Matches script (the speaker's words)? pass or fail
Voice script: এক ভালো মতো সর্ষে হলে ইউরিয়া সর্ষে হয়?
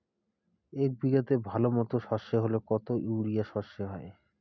fail